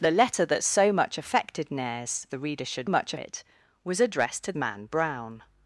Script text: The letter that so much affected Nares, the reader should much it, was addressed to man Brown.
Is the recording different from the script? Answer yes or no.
no